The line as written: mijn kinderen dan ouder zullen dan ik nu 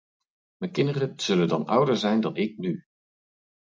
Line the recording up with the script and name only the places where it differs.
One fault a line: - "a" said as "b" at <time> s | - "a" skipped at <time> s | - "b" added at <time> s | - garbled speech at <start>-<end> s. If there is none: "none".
- "zullen" added at 1.2 s
- "zullen" said as "zijn" at 2.0 s